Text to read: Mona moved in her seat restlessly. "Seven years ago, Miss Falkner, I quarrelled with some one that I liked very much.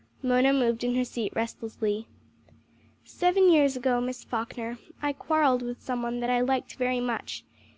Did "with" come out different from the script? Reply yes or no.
no